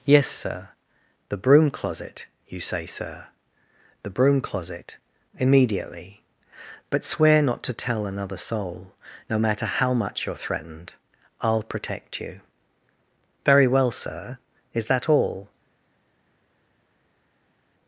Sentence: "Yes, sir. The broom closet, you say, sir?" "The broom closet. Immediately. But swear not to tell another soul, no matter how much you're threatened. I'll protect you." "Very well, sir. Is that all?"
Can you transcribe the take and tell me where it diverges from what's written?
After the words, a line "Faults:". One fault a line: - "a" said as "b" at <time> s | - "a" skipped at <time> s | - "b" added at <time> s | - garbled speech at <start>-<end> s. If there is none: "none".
"Yes, sir. The broom closet, you say, sir?" "The broom closet. Immediately. But swear not to tell another soul, no matter how much you're threatened. I'll protect you." "Very well, sir. Is that all?"
Faults:
none